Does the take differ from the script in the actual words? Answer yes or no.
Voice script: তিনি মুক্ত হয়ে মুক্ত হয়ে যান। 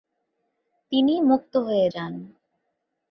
yes